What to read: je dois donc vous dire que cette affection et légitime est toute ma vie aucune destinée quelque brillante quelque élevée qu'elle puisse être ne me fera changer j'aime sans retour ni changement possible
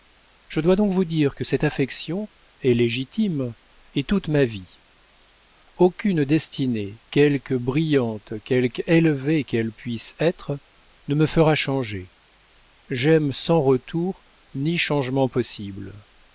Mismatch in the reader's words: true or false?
false